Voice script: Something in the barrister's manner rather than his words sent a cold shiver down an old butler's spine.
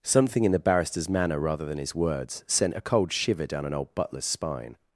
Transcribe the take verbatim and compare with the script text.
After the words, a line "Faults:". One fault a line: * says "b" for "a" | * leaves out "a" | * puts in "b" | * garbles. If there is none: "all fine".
Something in the barrister's manner rather than his words sent a cold shiver down an old butler's spine.
Faults:
all fine